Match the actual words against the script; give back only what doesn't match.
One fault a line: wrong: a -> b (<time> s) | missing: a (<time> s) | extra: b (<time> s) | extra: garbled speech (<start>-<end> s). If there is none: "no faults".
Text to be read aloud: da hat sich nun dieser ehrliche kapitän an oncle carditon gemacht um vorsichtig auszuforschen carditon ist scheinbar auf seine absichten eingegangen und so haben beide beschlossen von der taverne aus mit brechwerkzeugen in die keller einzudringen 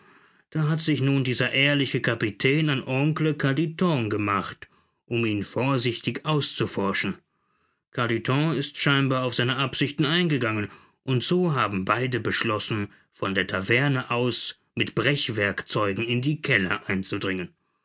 extra: ihn (5.3 s)